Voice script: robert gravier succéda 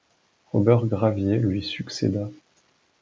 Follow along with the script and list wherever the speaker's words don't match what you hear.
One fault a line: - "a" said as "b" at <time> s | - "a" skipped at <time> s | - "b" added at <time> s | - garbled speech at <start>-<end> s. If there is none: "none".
- "lui" added at 1.4 s